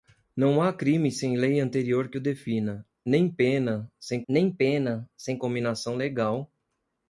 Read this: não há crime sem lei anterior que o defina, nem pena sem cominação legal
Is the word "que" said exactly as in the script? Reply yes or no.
yes